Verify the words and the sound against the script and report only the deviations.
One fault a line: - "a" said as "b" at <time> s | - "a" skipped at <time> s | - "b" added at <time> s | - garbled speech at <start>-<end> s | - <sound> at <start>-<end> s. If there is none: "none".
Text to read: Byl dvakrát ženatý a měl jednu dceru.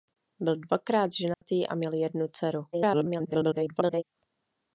- dropout at 1.3-1.4 s
- garbled speech at 2.7-4.0 s